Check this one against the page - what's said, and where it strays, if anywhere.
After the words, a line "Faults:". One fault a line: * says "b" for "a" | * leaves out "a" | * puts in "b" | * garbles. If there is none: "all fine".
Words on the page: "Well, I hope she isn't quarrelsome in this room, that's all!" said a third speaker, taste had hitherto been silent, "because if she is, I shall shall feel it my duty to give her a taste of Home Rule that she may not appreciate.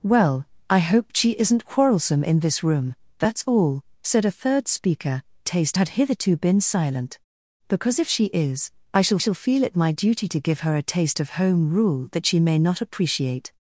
"Well, I hope she isn't quarrelsome in this room, that's all!" said a third speaker, taste had hitherto been silent, "because if she is, I shall shall feel it my duty to give her a taste of Home Rule that she may not appreciate.
Faults:
all fine